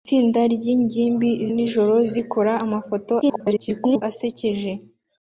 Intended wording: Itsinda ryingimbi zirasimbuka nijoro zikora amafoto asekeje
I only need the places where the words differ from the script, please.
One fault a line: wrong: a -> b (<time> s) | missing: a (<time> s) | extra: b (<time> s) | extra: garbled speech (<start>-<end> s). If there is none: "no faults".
missing: zirasimbuka (1.3 s)
extra: garbled speech (3.2-4.0 s)